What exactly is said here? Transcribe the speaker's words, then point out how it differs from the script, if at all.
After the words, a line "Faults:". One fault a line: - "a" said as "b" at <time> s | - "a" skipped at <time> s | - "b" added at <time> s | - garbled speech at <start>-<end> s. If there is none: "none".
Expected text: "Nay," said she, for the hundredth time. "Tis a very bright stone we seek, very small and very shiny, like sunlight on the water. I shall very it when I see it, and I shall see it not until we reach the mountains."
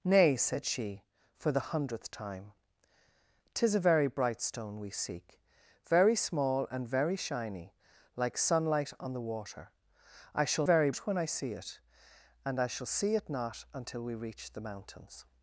"Nay," said she, for the hundredth time. "Tis a very bright stone we seek, very small and very shiny, like sunlight on the water. I shall very it when I see it, and I shall see it not until we reach the mountains."
Faults:
none